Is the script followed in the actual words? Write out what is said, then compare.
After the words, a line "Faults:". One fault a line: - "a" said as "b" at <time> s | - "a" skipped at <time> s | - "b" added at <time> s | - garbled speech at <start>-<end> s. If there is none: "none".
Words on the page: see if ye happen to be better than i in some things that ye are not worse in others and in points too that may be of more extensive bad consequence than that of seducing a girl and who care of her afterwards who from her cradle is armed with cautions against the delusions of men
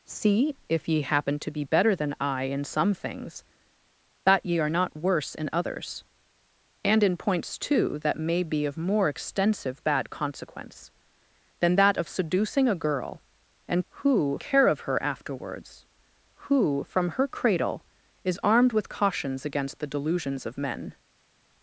see if ye happen to be better than i in some things that ye are not worse in others and in points too that may be of more extensive bad consequence than that of seducing a girl and who care of her afterwards who from her cradle is armed with cautions against the delusions of men
Faults:
none